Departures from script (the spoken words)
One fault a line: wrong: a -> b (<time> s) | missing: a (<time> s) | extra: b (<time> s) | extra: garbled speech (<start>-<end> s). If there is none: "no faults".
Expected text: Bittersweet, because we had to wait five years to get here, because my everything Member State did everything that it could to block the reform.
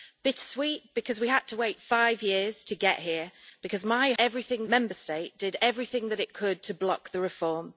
no faults